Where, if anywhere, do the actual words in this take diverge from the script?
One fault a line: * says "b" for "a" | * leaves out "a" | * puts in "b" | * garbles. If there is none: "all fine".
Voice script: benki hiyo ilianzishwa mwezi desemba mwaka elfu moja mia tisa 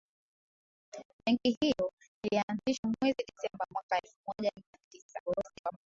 * garbles